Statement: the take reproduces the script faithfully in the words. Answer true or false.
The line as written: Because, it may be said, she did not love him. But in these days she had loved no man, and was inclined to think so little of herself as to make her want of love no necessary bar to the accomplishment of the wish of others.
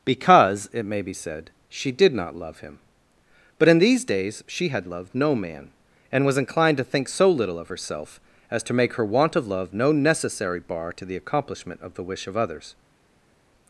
true